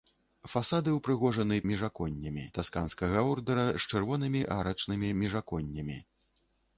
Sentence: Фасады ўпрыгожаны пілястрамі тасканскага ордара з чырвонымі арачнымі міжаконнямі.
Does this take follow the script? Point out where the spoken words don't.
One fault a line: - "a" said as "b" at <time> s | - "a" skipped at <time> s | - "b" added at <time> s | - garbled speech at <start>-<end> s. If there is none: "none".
- "пілястрамі" said as "міжаконнямі" at 1.7 s